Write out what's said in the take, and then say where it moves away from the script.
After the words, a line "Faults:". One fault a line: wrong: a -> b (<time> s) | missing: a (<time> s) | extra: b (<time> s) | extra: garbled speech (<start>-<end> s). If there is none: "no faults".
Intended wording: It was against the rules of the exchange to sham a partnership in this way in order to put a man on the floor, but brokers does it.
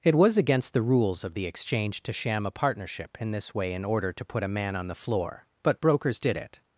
It was against the rules of the exchange to sham a partnership in this way in order to put a man on the floor, but brokers did it.
Faults:
wrong: does -> did (6.2 s)